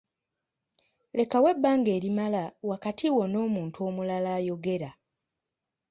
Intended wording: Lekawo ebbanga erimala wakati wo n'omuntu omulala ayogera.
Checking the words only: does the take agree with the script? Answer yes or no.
yes